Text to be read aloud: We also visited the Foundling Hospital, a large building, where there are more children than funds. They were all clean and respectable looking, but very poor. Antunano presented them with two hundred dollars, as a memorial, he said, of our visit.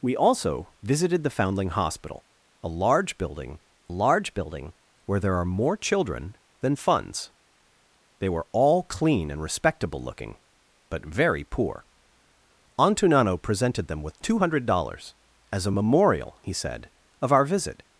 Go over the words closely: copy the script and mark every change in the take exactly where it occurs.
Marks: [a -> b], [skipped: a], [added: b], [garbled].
We also visited the Foundling Hospital, a large building, [added: large building] where there are more children than funds. They were all clean and respectable looking, but very poor. Antunano presented them with two hundred dollars, as a memorial, he said, of our visit.